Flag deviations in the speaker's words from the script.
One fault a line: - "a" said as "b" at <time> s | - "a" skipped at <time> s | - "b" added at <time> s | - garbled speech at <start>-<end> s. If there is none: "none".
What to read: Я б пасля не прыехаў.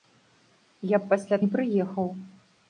none